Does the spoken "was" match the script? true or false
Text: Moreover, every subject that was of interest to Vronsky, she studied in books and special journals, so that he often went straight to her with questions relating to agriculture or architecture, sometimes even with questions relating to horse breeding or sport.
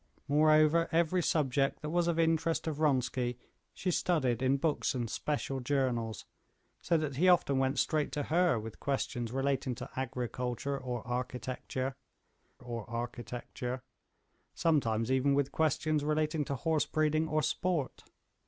true